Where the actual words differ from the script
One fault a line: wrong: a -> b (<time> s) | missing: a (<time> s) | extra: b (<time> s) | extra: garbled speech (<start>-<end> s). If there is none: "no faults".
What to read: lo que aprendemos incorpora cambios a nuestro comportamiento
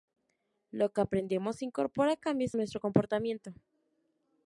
missing: a (2.5 s)